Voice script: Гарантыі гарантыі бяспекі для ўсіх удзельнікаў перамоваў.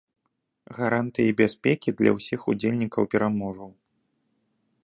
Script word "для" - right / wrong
right